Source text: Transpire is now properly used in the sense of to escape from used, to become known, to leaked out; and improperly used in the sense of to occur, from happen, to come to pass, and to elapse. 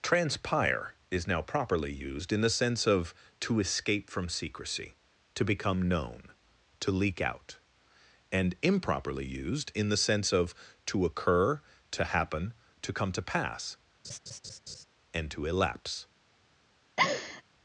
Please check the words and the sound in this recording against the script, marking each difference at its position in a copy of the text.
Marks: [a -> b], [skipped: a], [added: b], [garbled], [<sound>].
Transpire is now properly used in the sense of to escape from [used, -> secrecy] to become known, to [leaked -> leak] out; and improperly used in the sense of to occur, [from -> to] happen, to come to pass, [laugh] and to elapse. [laugh]